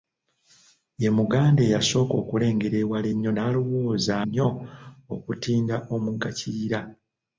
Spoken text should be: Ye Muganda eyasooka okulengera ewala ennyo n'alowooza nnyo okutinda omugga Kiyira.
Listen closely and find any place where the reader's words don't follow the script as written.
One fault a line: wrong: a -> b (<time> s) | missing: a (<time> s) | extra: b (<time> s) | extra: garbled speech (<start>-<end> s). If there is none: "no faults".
no faults